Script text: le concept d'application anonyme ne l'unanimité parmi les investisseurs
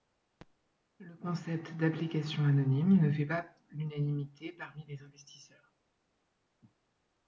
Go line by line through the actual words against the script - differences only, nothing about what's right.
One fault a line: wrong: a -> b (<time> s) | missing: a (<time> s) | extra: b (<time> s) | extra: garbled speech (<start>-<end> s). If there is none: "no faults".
extra: fait pas (3.1 s)